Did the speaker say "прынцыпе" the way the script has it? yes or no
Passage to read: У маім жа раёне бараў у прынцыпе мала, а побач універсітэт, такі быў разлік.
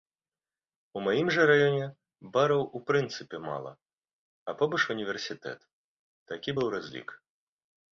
yes